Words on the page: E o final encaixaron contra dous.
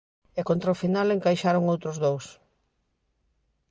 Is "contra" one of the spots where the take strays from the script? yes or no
yes